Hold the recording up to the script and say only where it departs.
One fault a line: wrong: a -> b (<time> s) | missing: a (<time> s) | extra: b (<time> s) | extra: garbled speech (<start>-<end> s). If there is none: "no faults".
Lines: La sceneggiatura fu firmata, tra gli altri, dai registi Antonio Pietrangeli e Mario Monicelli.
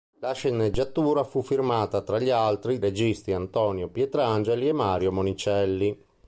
missing: dai (2.8 s)